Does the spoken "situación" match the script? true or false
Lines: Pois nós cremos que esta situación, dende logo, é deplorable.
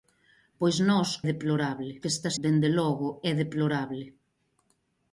false